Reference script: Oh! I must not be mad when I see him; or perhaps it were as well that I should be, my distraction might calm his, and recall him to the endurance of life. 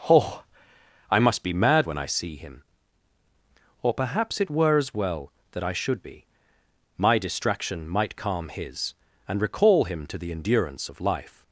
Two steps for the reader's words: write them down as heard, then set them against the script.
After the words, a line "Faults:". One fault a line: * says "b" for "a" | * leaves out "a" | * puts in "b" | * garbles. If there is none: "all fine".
Oh! I must be mad when I see him; or perhaps it were as well that I should be, my distraction might calm his, and recall him to the endurance of life.
Faults:
* leaves out "not"